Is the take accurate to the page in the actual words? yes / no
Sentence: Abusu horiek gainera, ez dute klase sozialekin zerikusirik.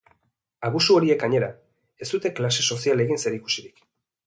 yes